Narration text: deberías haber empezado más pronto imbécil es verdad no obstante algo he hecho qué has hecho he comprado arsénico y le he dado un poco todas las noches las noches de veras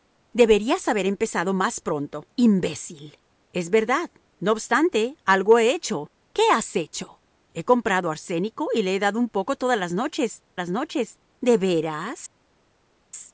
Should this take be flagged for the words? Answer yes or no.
no